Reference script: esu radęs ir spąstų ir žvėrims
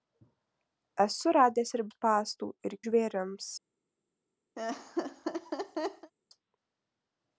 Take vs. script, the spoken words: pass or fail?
pass